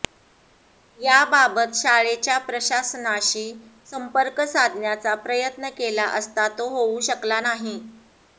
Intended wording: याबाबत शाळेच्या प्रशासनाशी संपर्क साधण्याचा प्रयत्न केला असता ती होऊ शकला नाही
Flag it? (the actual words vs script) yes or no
yes